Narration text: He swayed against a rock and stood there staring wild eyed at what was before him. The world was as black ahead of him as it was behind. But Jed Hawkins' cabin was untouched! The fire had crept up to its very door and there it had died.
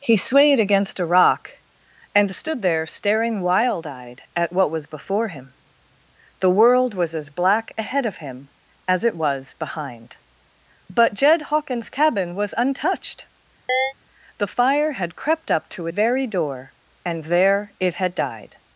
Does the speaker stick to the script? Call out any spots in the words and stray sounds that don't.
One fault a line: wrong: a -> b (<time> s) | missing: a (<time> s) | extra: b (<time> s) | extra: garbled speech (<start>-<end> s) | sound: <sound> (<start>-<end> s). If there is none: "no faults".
sound: chirp (13.7-13.9 s)
missing: its (15.9 s)